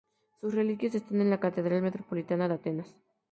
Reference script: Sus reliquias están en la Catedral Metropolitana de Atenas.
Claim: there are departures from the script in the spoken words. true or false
false